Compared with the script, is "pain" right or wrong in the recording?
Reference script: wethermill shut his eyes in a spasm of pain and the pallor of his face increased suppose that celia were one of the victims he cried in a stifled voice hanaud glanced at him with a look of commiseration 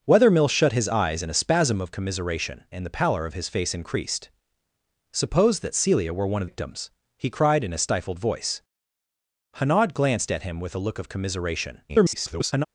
wrong